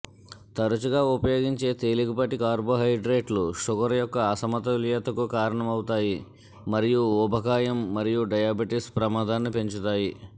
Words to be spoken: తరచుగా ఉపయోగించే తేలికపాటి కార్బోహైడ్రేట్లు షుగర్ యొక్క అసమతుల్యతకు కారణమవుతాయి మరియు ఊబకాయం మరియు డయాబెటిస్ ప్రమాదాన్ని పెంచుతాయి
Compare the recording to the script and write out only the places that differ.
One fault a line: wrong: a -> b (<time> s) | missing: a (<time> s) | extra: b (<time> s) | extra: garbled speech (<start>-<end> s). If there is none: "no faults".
no faults